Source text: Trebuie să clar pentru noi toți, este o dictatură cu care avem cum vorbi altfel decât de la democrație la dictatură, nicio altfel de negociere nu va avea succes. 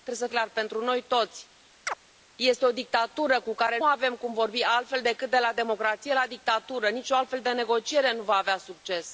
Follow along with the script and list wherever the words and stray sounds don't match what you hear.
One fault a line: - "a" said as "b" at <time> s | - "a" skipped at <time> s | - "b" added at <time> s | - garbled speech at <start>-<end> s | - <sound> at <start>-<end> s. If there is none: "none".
- chirp at 1.9-2.0 s